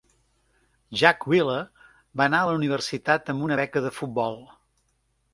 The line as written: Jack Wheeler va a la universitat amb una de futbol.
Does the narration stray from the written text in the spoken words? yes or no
yes